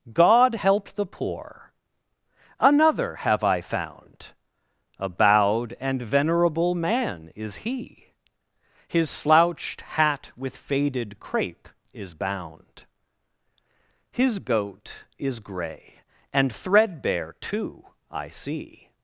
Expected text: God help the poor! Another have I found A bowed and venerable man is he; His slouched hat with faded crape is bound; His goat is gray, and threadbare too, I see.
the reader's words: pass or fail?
pass